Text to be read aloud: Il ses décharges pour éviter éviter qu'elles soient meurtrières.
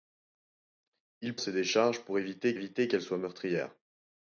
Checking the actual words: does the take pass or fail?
pass